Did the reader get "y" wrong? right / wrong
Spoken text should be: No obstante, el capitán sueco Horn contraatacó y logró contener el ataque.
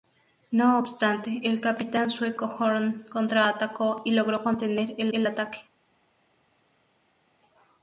right